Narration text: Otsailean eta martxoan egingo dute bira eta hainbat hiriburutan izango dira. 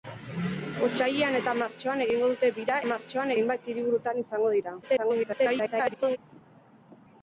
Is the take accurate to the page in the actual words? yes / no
no